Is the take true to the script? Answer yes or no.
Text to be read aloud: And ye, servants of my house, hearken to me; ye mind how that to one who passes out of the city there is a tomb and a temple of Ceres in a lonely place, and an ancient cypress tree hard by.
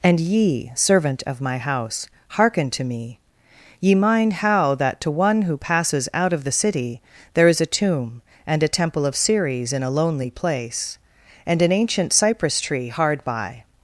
no